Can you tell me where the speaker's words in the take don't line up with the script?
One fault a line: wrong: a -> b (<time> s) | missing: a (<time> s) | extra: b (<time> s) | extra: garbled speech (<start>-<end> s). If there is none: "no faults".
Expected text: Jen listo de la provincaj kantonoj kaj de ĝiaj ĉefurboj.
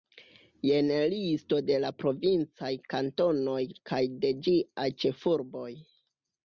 no faults